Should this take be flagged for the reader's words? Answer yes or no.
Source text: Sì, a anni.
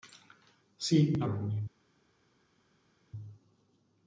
no